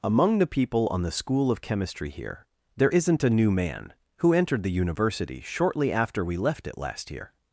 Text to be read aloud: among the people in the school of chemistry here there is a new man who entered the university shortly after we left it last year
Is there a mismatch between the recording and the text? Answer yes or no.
yes